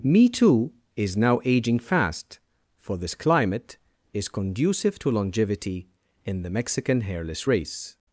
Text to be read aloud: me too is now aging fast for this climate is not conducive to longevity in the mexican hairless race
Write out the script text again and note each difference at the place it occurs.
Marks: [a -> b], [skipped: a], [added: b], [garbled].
me too is now aging fast for this climate is [skipped: not] conducive to longevity in the mexican hairless race